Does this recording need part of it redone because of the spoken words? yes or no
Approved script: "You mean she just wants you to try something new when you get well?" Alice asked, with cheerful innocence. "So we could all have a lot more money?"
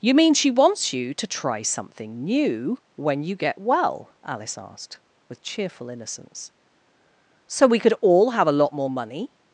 yes